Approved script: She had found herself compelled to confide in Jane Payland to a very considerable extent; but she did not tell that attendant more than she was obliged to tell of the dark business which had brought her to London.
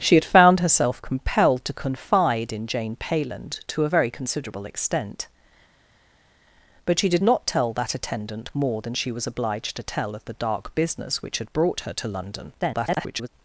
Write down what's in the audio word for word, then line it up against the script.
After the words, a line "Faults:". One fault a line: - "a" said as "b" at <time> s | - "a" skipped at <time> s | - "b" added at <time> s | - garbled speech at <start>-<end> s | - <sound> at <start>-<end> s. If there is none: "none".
She had found herself compelled to confide in Jane Payland to a very considerable extent; but she did not tell that attendant more than she was obliged to tell of the dark business which had brought her to London. [garbled]
Faults:
- garbled speech at 12.6-13.3 s